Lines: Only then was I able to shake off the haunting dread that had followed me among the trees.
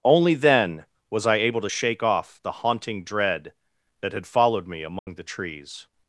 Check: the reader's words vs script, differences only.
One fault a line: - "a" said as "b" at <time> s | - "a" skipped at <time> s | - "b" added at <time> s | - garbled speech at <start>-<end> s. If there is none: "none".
none